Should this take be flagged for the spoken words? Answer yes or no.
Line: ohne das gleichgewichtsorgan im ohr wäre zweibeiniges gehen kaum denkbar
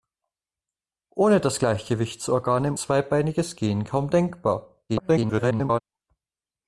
yes